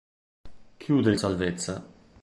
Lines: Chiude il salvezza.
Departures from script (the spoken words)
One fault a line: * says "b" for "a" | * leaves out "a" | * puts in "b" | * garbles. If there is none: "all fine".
all fine